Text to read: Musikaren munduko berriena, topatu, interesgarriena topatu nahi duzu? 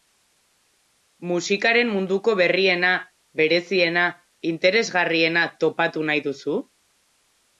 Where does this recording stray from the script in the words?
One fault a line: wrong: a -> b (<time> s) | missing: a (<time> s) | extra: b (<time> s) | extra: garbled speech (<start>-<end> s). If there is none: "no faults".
wrong: topatu -> bereziena (3.4 s)